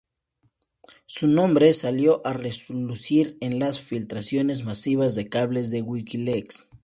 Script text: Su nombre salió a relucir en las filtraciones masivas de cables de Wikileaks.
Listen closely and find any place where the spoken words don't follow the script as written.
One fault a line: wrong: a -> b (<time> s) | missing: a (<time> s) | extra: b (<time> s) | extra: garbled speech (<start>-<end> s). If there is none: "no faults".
no faults